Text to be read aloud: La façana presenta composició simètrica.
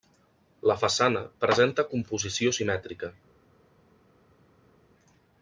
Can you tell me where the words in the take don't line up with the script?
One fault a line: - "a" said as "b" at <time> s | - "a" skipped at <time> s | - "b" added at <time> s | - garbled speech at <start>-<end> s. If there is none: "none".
none